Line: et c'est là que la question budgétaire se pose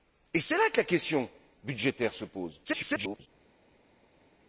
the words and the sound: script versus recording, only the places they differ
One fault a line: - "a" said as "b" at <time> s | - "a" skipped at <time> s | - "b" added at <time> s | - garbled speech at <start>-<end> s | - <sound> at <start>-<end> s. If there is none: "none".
- garbled speech at 2.6-3.3 s